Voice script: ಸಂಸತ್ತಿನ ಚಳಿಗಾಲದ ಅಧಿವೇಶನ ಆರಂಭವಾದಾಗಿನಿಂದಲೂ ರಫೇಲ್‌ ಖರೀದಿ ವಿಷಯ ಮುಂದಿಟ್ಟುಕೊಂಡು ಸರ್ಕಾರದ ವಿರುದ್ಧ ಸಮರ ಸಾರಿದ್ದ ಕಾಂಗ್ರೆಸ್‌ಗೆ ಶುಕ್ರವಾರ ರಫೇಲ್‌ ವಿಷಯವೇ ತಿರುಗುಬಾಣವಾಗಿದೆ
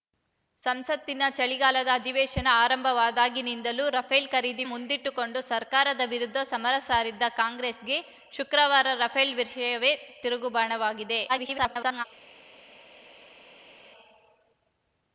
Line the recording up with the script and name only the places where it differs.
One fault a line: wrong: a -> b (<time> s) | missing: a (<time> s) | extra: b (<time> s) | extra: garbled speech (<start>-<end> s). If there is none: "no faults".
missing: ವಿಷಯ (4.6 s)
extra: garbled speech (11.3-12.0 s)